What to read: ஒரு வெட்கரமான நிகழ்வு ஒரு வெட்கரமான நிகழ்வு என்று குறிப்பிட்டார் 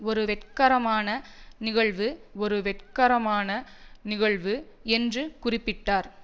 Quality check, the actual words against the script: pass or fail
pass